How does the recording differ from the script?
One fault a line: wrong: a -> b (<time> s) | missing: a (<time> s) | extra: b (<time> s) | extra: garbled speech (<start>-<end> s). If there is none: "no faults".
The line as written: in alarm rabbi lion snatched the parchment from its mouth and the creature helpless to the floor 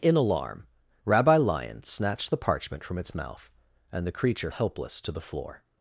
no faults